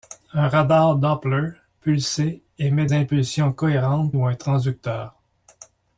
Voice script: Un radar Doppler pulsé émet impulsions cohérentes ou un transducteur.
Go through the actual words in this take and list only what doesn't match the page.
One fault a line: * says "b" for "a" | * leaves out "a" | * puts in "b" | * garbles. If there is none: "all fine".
all fine